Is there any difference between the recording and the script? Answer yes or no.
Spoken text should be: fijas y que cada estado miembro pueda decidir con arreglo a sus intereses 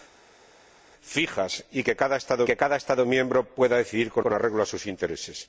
yes